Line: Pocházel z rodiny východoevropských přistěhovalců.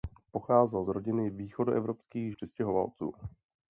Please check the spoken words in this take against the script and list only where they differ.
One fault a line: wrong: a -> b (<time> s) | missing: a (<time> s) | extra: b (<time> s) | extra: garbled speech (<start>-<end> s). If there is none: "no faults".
no faults